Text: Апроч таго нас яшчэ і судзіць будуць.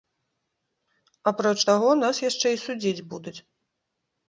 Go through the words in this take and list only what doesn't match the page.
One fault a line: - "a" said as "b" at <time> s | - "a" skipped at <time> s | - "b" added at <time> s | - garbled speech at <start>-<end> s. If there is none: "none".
none